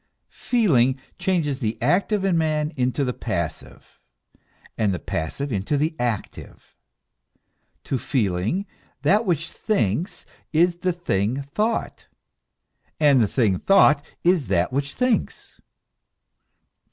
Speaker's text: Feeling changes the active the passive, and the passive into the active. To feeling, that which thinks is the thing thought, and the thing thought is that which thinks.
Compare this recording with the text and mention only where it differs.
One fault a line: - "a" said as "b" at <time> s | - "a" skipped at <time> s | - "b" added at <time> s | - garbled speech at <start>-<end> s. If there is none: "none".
- "in man into" added at 2.2 s